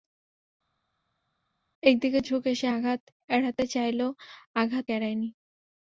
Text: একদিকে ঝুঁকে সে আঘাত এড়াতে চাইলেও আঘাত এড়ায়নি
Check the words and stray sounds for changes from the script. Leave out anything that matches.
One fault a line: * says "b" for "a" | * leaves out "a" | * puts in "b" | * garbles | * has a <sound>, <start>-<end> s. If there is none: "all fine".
all fine